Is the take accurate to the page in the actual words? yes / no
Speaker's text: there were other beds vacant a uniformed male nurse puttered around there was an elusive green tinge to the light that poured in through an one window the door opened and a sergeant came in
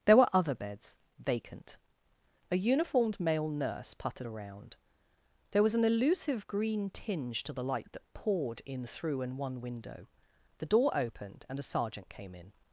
yes